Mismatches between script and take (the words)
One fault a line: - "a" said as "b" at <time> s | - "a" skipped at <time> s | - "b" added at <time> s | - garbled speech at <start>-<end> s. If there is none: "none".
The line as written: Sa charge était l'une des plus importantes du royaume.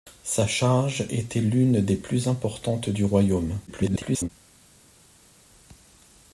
- garbled speech at 3.7-4.3 s